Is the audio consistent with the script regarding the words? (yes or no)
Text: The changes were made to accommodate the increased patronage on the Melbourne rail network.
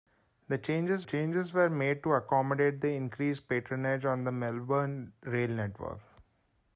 no